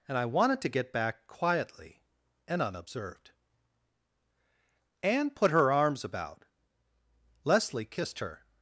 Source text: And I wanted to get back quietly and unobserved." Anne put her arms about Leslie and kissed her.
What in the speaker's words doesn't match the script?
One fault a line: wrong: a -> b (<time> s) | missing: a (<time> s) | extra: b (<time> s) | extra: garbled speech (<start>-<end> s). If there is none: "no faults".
missing: and (7.8 s)